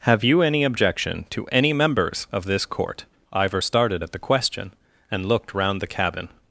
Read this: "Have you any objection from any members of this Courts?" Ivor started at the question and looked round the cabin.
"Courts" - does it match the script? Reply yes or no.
no